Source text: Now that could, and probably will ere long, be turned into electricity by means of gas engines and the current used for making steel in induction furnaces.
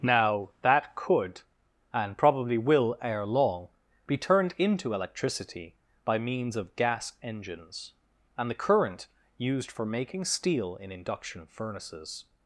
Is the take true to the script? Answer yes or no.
yes